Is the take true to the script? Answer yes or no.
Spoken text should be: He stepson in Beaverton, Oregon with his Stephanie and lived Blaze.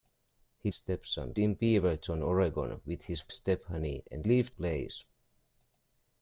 yes